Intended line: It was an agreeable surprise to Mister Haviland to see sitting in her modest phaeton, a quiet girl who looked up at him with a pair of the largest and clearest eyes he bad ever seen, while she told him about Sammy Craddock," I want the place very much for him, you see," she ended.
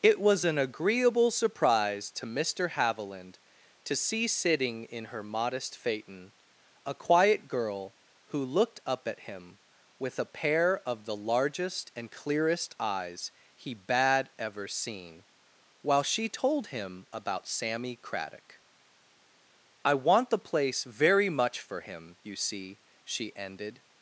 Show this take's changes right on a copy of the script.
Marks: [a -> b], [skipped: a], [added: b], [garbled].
It was an agreeable surprise to Mister Haviland to see sitting in her modest phaeton, a quiet girl who looked up at him with a pair of the largest and clearest eyes he bad ever seen, while she told him about Sammy Craddock," I want the place very much for him, you see," she ended.